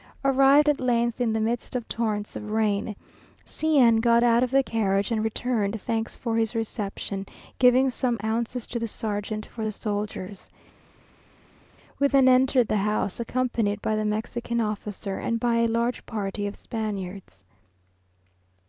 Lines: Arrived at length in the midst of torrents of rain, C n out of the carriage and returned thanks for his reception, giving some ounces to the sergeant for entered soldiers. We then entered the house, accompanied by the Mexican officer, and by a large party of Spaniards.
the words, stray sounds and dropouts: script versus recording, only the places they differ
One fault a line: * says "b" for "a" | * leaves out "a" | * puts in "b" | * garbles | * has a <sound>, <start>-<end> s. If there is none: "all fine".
* puts in "got"
* says "the" for "entered"